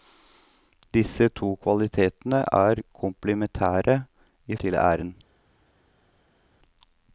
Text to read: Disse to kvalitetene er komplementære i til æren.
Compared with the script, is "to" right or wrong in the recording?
right